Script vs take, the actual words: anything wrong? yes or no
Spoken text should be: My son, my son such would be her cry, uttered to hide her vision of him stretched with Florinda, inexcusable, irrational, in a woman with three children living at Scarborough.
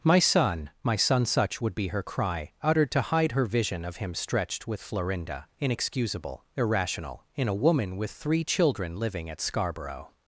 no